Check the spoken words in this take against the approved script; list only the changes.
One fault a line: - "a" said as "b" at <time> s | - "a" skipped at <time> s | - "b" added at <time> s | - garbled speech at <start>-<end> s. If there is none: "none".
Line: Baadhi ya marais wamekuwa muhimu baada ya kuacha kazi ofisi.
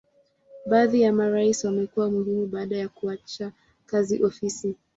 none